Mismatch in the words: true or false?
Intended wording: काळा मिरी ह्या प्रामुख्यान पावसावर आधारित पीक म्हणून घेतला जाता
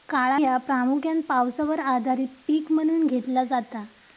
true